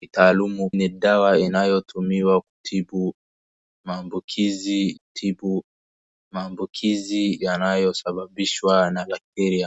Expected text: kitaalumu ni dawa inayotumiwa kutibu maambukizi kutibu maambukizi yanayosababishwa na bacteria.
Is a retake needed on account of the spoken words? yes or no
no